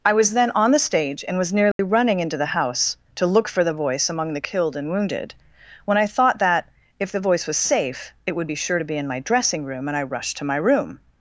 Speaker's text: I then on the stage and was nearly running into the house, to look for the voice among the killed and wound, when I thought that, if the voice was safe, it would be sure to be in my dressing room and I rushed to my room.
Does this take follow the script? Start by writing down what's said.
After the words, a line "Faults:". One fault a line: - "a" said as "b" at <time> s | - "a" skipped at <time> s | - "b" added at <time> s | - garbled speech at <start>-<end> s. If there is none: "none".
I was then on the stage and was nearly running into the house, to look for the voice among the killed and wounded, when I thought that, if the voice was safe, it would be sure to be in my dressing room and I rushed to my room.
Faults:
- "was" added at 0.1 s
- "wound" said as "wounded" at 4.9 s